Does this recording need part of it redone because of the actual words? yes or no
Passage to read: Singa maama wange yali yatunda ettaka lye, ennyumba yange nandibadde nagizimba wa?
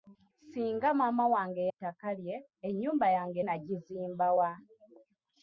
yes